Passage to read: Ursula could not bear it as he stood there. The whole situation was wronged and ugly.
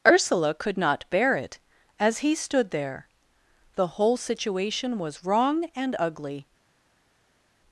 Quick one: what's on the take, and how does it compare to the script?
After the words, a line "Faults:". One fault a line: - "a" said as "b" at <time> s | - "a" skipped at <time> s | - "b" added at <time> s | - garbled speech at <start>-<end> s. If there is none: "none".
Ursula could not bear it as he stood there. The whole situation was wrong and ugly.
Faults:
- "wronged" said as "wrong" at 5.3 s